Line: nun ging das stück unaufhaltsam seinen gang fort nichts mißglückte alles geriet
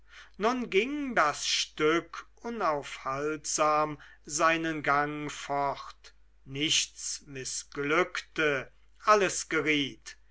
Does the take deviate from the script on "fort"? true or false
false